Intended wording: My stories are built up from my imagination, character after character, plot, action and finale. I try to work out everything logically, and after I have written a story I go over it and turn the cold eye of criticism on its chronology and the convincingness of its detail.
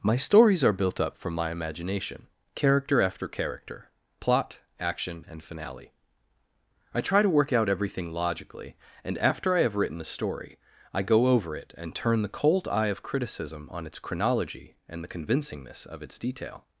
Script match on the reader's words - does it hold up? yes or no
yes